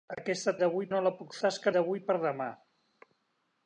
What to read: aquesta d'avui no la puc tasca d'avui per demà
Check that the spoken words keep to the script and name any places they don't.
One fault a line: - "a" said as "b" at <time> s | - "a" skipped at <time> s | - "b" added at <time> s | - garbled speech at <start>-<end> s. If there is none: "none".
none